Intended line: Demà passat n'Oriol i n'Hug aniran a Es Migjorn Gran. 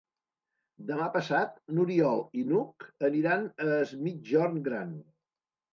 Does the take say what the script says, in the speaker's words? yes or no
yes